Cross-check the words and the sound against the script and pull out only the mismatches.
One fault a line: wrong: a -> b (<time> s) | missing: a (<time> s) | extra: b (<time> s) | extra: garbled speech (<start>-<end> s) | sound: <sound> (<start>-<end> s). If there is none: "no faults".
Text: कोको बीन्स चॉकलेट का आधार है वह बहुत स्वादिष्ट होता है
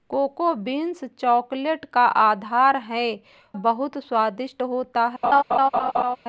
missing: वह (3.0 s)
sound: laugh (5.2-6.2 s)